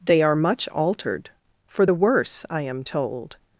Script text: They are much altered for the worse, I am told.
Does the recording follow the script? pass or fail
pass